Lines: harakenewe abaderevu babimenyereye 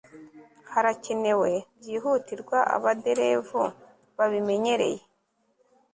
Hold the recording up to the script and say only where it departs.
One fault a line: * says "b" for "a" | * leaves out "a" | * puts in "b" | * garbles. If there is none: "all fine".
* puts in "byihutirwa"